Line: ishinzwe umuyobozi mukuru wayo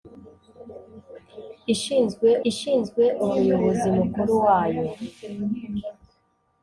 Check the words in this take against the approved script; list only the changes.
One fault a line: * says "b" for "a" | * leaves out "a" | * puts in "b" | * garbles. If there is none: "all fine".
* puts in "ishinzwe"